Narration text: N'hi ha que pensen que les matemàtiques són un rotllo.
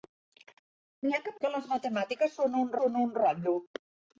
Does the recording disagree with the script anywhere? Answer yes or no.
yes